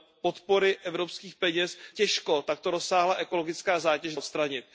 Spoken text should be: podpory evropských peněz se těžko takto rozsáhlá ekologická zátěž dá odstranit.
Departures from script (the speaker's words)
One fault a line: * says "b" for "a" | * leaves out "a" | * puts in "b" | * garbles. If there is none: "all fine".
* leaves out "se"
* leaves out "dá"